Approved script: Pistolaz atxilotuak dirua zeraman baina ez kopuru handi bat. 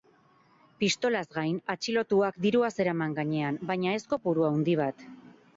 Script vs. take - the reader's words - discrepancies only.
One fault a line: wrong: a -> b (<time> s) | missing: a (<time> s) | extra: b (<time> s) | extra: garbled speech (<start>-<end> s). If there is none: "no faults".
extra: gain (1.4 s)
extra: gainean (3.2 s)